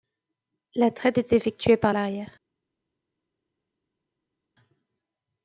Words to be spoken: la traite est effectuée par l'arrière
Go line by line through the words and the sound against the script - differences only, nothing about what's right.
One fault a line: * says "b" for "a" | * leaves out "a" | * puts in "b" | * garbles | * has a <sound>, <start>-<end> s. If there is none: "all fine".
all fine